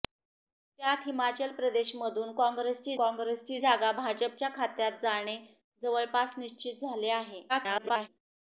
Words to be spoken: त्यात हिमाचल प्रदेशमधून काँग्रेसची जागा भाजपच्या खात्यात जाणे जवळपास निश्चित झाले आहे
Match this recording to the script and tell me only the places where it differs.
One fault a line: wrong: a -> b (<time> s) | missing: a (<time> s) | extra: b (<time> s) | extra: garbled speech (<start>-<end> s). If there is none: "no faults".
extra: काँग्रेसची (3.0 s)
extra: garbled speech (7.5-8.1 s)